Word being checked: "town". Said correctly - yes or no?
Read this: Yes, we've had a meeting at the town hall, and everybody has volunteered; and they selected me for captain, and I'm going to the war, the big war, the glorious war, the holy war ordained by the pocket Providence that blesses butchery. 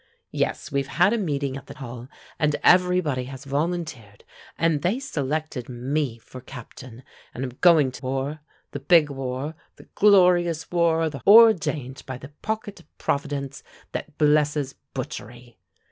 no